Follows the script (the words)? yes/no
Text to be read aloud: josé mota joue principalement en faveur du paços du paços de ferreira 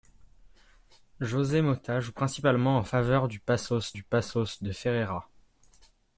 yes